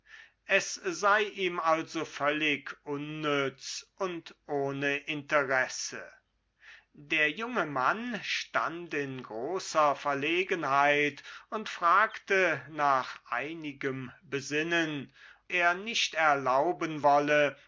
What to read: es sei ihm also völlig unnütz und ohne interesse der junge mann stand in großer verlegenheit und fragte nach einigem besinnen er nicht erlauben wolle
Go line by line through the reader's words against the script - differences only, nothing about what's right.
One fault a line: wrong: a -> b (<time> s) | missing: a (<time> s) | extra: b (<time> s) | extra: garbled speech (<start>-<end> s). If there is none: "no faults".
no faults